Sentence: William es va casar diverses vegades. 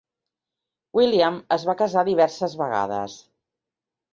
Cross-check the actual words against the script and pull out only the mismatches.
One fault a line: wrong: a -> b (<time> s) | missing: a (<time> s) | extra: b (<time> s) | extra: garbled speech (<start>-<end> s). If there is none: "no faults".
no faults